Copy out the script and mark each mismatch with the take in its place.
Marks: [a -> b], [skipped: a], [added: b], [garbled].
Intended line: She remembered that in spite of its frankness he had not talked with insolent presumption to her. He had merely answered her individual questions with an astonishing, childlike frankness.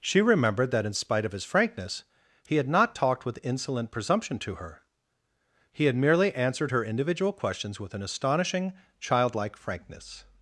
She remembered that in spite of [its -> his] frankness he had not talked with insolent presumption to her. He had merely answered her individual questions with an astonishing, childlike frankness.